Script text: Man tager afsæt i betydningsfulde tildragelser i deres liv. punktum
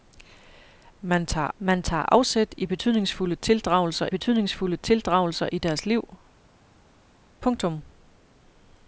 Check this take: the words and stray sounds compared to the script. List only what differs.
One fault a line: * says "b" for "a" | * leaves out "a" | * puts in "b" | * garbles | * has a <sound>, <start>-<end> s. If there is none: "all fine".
* puts in "man tager"
* puts in "betydningsfulde tildragelser"